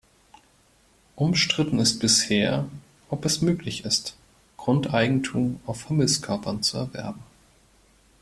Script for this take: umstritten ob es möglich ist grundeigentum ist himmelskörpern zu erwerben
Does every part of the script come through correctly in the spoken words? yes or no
no